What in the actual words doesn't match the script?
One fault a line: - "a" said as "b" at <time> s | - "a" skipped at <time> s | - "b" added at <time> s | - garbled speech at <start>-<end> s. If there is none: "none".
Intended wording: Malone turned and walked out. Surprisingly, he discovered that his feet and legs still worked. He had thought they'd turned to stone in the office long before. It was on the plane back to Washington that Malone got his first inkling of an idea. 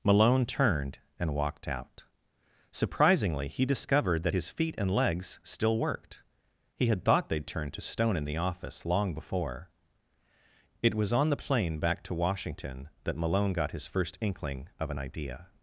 none